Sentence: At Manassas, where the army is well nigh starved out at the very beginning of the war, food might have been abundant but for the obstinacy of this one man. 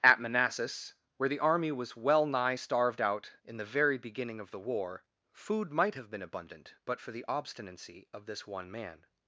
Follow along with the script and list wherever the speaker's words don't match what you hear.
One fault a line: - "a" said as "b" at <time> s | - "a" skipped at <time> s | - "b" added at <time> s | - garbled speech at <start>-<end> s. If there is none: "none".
- "is" said as "was" at 1.7 s
- "at" said as "in" at 3.4 s